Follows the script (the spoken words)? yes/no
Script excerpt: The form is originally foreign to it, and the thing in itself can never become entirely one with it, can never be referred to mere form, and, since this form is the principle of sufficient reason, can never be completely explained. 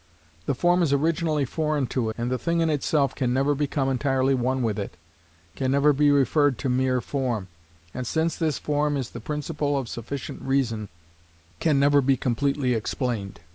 no